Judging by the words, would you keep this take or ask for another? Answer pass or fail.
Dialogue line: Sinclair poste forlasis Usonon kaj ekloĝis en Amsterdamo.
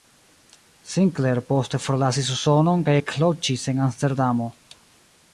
pass